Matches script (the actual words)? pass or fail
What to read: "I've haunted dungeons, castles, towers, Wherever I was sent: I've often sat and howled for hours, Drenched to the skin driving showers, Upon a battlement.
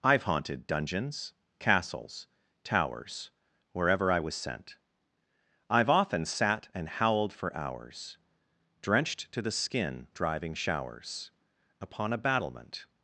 pass